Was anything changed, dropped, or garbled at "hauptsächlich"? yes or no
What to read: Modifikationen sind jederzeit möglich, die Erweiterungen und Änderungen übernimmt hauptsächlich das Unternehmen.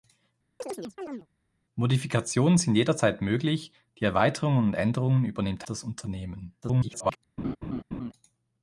yes